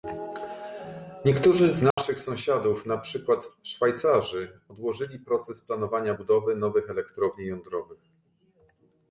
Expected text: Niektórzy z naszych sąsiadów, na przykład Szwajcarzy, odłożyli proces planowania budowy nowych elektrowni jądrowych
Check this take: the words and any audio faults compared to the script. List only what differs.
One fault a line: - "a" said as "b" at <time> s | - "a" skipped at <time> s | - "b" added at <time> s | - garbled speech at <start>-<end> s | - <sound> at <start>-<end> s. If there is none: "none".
- dropout at 1.9-2.0 s